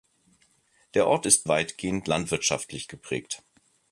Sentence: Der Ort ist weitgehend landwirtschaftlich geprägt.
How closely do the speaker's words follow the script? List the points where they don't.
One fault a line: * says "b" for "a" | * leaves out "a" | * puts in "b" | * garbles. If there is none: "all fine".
all fine